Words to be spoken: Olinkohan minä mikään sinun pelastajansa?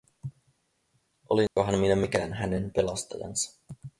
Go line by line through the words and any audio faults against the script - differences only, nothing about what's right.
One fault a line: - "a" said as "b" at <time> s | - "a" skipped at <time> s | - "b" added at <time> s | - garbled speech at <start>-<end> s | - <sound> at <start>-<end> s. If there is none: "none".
- dropout at 1.5-1.6 s
- "sinun" said as "hänen" at 2.3 s